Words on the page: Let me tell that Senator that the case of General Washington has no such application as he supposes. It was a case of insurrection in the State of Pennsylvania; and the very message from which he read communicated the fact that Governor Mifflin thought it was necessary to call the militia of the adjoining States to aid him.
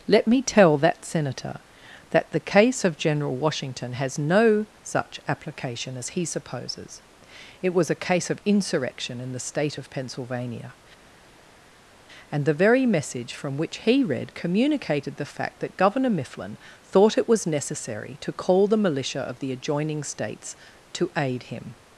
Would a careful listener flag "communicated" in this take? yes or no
no